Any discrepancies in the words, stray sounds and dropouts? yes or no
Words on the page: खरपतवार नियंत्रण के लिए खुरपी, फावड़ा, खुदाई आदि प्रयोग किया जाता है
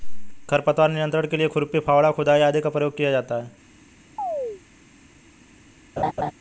yes